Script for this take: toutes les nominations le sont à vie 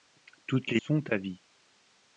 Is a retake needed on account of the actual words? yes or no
yes